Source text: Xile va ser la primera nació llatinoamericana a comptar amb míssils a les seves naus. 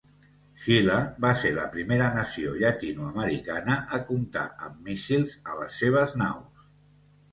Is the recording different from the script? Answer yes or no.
no